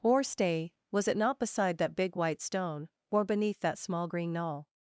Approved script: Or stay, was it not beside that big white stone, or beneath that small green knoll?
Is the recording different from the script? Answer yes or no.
no